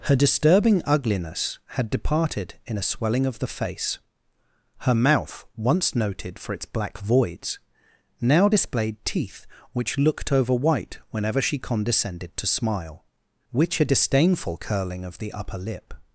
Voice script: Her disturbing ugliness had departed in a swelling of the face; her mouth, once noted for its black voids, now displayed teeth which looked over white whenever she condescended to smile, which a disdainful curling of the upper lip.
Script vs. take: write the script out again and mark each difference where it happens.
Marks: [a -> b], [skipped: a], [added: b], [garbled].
Her disturbing ugliness had departed in a swelling of the face; her mouth, once noted for its black voids, now displayed teeth which looked over white whenever she condescended to smile, which a disdainful curling of the upper lip.